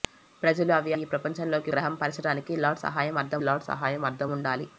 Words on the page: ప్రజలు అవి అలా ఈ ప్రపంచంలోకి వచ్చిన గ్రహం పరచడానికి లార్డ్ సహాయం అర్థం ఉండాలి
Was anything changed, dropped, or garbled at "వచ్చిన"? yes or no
yes